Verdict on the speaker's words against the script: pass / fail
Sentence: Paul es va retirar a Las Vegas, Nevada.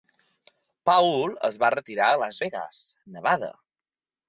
pass